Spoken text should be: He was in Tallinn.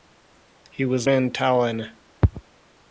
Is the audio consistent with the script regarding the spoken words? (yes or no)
yes